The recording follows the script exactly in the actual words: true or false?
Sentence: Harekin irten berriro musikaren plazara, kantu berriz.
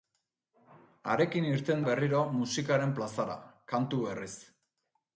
true